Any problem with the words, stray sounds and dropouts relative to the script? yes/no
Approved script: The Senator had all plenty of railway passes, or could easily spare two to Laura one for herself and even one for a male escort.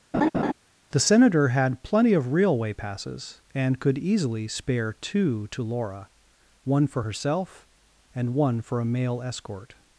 yes